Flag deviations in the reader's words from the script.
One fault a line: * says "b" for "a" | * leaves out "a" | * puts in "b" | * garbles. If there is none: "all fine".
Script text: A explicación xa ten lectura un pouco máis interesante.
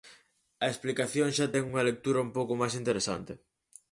* puts in "unha"